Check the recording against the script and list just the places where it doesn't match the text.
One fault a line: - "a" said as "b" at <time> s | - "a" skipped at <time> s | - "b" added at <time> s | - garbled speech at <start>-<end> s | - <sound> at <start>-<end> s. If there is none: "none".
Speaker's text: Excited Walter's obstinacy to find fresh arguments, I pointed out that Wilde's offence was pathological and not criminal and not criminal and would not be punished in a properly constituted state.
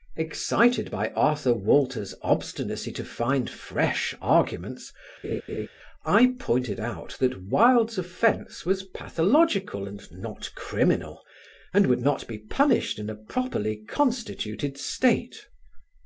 - "by Arthur" added at 0.9 s
- laugh at 5.2-5.7 s
- "not criminal and" skipped at 11.9 s